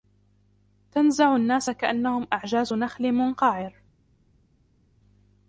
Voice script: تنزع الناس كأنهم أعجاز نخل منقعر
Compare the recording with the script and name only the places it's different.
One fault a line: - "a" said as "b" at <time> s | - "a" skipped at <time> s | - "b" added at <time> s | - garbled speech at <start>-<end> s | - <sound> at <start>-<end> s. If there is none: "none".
none